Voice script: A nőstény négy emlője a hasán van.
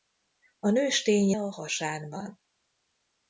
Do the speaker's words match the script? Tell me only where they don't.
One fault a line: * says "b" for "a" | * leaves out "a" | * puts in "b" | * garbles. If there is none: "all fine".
* leaves out "négy emlője"